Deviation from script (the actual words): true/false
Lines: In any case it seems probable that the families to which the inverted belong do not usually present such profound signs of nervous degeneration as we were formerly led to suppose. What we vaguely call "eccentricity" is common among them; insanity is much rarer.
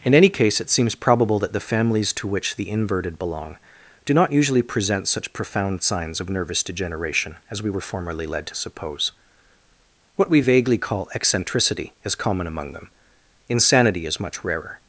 false